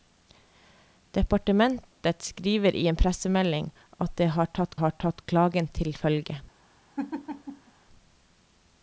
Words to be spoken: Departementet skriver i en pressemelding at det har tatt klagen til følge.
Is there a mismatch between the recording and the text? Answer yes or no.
yes